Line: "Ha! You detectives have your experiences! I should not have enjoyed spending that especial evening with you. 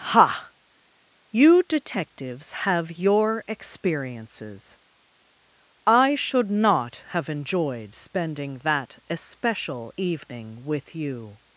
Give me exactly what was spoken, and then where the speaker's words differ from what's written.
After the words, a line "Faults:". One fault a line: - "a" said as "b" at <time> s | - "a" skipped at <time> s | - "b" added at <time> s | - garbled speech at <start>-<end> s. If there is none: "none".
"Ha! You detectives have your experiences! I should not have enjoyed spending that especial evening with you.
Faults:
none